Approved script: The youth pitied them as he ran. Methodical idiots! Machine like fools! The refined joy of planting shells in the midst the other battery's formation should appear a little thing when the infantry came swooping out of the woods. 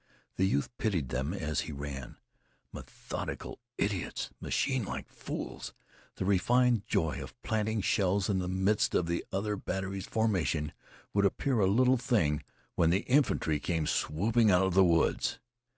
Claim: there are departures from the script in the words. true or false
true